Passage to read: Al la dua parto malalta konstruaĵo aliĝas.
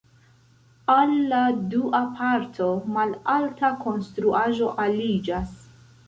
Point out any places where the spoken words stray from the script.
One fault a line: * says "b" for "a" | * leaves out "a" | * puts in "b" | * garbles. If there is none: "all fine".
all fine